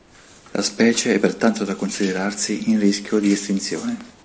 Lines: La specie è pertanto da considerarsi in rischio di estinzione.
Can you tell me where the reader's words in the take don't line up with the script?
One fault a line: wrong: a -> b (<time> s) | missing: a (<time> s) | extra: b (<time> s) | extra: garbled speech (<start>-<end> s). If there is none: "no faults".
no faults